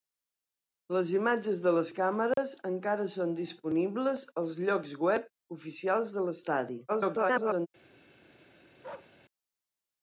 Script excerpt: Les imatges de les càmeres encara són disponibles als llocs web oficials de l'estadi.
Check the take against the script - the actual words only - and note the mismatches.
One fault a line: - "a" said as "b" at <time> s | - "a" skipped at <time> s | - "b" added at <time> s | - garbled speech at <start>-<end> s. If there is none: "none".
- garbled speech at 6.9-7.7 s